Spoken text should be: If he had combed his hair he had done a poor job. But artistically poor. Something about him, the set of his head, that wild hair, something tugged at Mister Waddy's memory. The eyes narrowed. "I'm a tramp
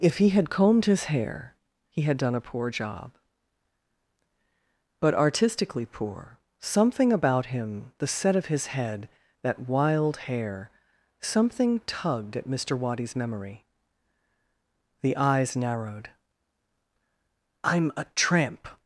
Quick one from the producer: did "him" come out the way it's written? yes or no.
yes